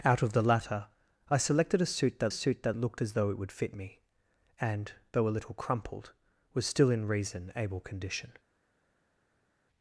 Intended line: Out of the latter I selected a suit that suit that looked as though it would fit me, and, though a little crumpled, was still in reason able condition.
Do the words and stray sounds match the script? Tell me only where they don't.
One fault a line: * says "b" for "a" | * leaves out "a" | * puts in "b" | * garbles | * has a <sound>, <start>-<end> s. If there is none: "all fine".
all fine